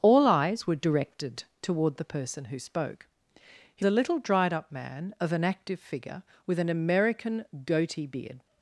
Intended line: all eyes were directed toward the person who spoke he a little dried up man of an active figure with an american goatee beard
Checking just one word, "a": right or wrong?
right